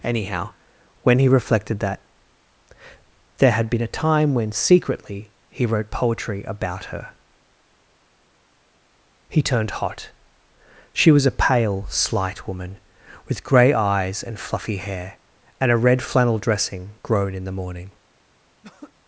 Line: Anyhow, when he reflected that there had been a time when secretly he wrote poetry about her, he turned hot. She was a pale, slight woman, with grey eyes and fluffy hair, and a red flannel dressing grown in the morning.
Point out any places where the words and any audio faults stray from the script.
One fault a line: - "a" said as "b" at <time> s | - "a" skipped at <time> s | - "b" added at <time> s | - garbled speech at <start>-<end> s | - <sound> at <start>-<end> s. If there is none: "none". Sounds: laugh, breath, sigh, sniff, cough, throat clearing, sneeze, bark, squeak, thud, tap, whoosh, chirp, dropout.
- throat clearing at 18.6-18.9 s